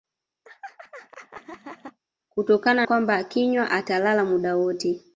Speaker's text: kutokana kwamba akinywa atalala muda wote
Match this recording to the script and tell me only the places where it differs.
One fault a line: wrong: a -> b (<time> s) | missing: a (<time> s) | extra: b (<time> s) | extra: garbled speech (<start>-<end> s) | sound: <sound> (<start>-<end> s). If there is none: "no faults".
sound: laugh (0.4-2.0 s)